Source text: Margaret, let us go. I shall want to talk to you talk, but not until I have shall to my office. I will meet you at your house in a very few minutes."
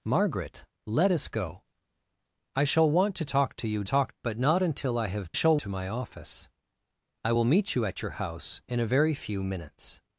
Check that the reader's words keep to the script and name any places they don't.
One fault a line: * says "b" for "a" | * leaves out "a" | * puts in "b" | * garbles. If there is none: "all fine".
all fine